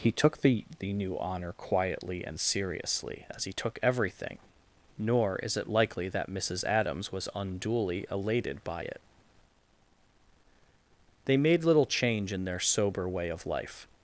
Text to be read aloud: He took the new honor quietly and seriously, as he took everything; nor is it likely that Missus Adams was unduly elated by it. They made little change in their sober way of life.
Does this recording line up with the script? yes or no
no